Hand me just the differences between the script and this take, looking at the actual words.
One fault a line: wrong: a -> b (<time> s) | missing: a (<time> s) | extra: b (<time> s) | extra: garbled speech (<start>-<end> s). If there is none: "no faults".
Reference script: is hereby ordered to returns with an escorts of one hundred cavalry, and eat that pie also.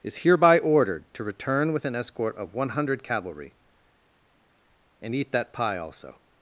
wrong: returns -> return (1.2 s)
wrong: escorts -> escort (1.9 s)